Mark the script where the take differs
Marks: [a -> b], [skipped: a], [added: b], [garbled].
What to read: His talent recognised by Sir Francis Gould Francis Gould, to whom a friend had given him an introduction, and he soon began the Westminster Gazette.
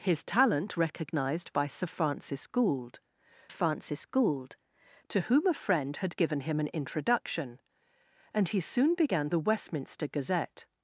His talent recognised by Sir Francis Gould Francis Gould, to whom a friend had given him an introduction, and he soon began the Westminster Gazette.